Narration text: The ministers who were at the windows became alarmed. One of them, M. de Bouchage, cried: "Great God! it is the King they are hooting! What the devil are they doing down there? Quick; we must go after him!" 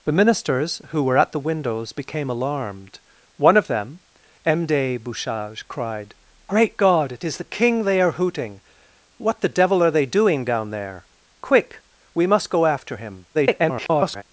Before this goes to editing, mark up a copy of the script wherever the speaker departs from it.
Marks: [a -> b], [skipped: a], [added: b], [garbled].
The ministers who were at the windows became alarmed. One of them, M. de Bouchage, cried: "Great God! it is the King they are hooting! What the devil are they doing down there? Quick; we must go after him!" [garbled]